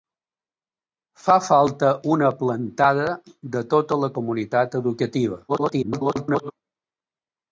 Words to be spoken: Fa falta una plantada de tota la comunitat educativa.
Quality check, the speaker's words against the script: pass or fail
fail